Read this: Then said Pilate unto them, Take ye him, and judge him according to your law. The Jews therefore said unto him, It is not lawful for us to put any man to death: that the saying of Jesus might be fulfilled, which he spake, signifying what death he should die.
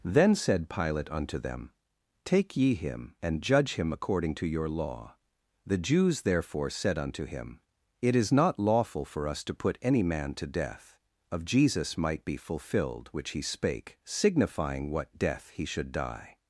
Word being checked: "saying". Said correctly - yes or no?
no